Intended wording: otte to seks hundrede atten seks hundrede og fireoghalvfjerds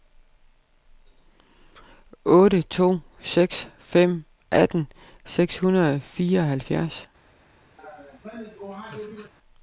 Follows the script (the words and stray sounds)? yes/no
no